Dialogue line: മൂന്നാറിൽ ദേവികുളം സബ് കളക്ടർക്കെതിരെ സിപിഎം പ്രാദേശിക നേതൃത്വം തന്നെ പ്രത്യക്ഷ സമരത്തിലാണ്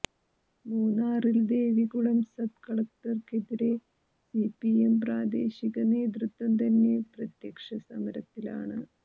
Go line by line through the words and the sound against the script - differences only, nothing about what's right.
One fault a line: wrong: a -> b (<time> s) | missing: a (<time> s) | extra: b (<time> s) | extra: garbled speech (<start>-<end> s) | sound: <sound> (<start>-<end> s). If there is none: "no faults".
no faults